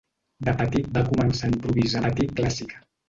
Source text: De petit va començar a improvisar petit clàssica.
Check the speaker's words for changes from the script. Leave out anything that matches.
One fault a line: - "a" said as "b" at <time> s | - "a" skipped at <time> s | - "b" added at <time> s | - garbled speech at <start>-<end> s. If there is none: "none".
none